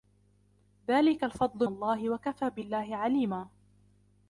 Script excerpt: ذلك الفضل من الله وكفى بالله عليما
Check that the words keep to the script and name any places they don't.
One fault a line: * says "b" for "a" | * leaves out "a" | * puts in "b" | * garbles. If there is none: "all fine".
* leaves out "من"